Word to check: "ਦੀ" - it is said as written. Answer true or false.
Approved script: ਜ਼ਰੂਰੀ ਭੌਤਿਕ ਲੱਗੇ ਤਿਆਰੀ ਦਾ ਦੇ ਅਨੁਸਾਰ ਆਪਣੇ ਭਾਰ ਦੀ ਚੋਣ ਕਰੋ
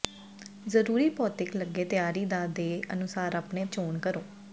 false